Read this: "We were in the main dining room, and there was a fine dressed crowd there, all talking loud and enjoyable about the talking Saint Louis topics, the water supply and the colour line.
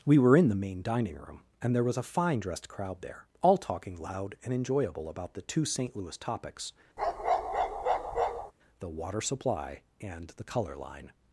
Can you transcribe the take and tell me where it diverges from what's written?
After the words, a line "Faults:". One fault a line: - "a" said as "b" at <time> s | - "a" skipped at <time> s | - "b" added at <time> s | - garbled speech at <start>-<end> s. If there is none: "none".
"We were in the main dining room, and there was a fine dressed crowd there, all talking loud and enjoyable about the two Saint Louis topics, the water supply and the colour line.
Faults:
- "talking" said as "two" at 5.4 s